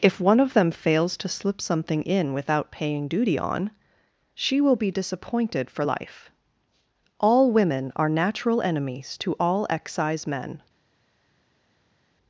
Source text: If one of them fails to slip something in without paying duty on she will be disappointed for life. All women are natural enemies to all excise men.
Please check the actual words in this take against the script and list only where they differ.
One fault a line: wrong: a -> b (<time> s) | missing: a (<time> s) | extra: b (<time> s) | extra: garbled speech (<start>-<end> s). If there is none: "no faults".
no faults